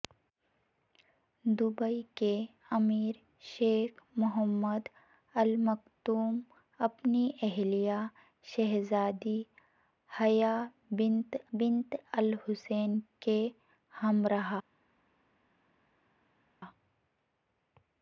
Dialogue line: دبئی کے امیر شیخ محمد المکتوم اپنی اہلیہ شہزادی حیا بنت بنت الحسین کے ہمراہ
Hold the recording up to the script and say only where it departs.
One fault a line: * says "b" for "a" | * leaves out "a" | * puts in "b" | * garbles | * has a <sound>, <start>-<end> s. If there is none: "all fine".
all fine